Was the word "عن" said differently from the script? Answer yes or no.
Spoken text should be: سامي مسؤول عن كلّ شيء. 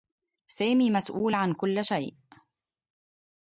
no